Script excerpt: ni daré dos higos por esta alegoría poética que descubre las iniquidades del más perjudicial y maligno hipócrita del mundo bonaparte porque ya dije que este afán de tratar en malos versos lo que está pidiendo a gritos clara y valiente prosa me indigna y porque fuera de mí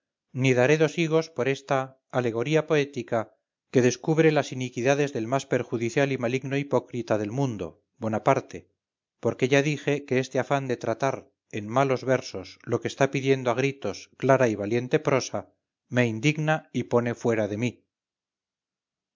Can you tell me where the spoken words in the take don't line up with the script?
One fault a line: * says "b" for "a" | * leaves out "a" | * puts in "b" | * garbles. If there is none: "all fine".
* says "pone" for "porque"